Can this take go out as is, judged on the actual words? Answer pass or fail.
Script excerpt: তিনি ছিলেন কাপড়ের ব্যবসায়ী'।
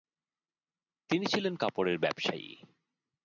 pass